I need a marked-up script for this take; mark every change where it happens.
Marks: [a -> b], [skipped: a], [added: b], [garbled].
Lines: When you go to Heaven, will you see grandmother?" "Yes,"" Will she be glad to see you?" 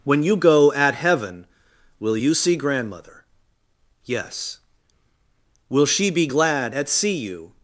When you go [to -> at] Heaven, will you see grandmother?" "Yes,"" Will she be glad [to -> at] see you?"